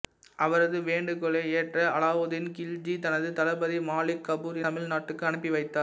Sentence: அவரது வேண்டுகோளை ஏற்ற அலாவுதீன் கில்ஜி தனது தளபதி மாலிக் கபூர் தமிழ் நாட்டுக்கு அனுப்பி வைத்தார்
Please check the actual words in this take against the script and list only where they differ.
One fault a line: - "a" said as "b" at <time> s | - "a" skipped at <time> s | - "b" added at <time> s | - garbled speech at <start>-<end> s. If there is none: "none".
none